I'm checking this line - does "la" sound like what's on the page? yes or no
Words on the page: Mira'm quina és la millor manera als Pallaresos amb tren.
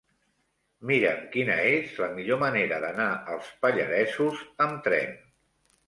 yes